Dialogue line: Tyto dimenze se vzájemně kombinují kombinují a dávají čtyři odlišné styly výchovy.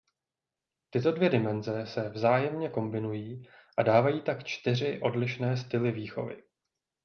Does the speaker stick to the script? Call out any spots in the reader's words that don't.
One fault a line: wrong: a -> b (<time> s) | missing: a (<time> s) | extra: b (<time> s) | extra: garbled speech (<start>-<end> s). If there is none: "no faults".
extra: dvě (1.1 s)
missing: kombinují (3.5 s)
extra: tak (4.2 s)